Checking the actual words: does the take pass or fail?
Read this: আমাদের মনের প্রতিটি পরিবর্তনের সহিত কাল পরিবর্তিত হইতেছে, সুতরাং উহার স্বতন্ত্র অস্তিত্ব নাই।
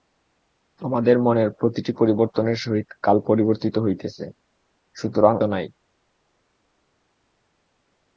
fail